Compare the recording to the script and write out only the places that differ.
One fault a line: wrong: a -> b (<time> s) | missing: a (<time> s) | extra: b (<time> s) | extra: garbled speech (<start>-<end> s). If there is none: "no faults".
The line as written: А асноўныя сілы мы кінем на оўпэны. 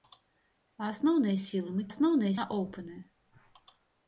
wrong: кінем -> асноўныя (1.9 s)